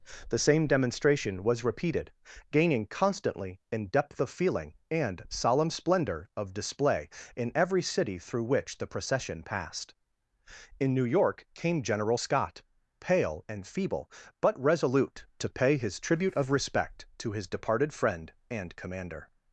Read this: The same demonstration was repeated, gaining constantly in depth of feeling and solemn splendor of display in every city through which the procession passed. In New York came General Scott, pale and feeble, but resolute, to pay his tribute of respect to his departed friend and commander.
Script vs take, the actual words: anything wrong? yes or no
no